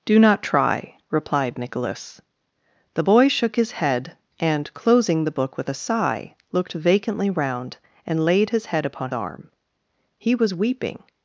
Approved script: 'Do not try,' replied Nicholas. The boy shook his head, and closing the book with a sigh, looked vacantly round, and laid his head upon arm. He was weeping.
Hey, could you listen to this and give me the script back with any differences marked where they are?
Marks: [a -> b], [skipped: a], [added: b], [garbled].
'Do not try,' replied Nicholas. The boy shook his head, and closing the book with a sigh, looked vacantly round, and laid his head upon arm. He was weeping.